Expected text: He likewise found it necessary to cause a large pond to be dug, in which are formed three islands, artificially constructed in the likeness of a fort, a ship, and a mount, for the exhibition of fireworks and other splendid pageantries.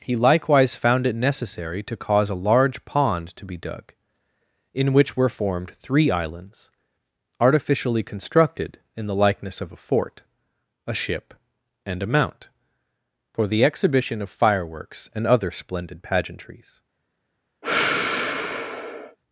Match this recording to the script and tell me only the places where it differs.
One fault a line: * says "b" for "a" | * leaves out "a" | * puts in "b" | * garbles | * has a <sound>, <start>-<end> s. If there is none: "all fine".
* says "were" for "are"
* has a sigh, 17.6-19.2 s